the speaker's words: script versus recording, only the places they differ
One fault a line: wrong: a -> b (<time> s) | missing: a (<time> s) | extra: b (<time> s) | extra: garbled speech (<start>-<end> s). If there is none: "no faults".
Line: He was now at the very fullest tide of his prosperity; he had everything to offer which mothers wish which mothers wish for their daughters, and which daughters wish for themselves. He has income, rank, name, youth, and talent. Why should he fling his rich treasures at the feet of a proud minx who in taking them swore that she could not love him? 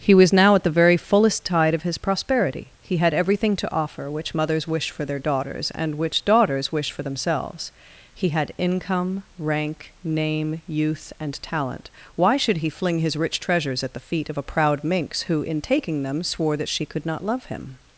missing: which mothers wish (4.9 s)
wrong: has -> had (8.3 s)